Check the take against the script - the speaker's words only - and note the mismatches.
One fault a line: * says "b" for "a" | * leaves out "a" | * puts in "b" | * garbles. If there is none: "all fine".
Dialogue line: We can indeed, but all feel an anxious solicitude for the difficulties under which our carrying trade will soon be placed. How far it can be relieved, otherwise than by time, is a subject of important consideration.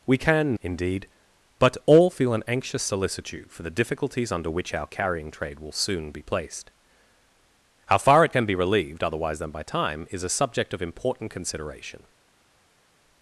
all fine